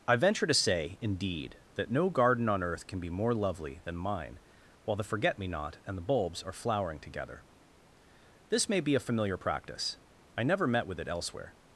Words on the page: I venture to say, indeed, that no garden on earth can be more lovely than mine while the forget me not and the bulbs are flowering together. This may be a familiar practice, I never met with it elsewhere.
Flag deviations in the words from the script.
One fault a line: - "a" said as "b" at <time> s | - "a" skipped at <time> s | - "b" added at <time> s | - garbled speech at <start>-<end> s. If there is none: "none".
none